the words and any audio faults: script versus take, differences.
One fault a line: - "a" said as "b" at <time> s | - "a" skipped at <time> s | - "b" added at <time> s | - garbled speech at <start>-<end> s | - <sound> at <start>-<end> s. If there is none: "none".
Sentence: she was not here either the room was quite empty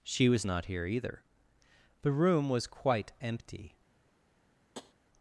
- tap at 4.7-4.9 s